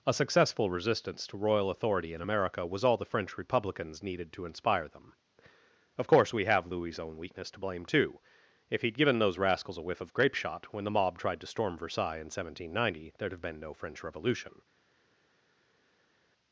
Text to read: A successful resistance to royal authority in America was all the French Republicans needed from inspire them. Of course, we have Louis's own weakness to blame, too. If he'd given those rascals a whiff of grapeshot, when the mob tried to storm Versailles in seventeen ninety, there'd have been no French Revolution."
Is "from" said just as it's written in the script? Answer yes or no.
no